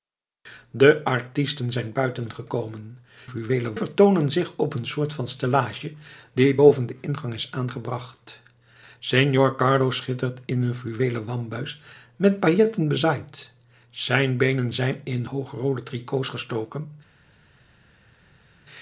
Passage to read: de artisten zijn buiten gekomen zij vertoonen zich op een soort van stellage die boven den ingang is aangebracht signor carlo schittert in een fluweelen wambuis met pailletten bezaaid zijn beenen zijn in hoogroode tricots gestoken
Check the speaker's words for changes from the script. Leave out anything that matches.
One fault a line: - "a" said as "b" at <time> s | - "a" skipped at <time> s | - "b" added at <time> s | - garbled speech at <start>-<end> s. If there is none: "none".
- "zij" said as "fluweelen" at 3.2 s